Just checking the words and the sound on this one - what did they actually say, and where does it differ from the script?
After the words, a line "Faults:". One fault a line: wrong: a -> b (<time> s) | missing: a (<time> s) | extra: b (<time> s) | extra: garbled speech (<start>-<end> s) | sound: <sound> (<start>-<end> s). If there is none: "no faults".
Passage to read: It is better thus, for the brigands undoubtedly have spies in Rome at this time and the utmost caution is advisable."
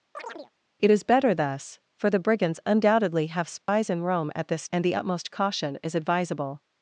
It is better thus, for the brigands undoubtedly have spies in Rome at this and the utmost caution is advisable."
Faults:
sound: chirp (0.1-0.5 s)
sound: dropout (3.6-3.7 s)
missing: time (4.7 s)